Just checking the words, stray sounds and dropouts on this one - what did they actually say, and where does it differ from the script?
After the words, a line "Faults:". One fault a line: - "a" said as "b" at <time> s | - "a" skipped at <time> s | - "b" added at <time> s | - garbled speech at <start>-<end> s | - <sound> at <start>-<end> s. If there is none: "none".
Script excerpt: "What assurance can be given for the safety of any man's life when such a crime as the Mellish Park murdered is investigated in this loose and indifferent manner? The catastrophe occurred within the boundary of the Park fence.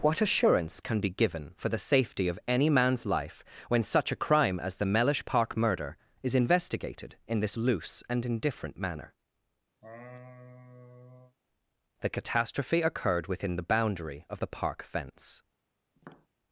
"What assurance can be given for the safety of any man's life when such a crime as the Mellish Park murder is investigated in this loose and indifferent manner? The catastrophe occurred within the boundary of the Park fence.
Faults:
- "murdered" said as "murder" at 5.5 s
- laugh at 9.8-11.4 s
- tap at 16.0-16.3 s